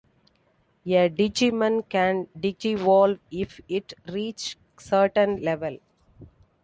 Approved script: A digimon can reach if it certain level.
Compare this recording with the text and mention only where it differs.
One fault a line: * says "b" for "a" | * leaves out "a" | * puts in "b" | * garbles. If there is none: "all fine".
* says "digivolve" for "reach"
* puts in "reach"